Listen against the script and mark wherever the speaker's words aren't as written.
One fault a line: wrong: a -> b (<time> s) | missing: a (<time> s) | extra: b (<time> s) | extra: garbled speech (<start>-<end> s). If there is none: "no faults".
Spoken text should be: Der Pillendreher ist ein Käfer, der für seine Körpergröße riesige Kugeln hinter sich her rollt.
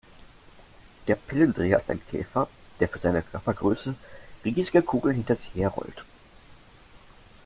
no faults